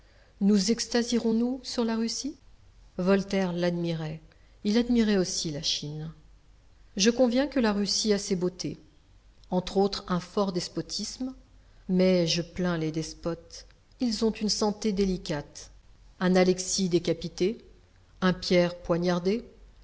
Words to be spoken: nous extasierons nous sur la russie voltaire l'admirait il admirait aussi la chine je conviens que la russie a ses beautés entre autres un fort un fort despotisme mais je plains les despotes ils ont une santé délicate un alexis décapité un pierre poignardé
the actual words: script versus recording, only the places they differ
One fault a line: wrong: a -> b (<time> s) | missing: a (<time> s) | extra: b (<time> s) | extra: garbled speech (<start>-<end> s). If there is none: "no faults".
missing: un fort (10.5 s)